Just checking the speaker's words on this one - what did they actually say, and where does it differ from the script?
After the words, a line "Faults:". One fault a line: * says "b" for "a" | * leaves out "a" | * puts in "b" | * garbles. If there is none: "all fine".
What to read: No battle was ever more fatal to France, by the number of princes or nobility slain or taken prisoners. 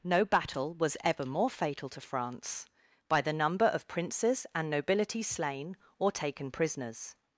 No battle was ever more fatal to France, by the number of princes and nobility slain or taken prisoners.
Faults:
* says "and" for "or"